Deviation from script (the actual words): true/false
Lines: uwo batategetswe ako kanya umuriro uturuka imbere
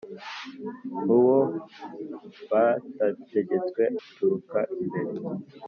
true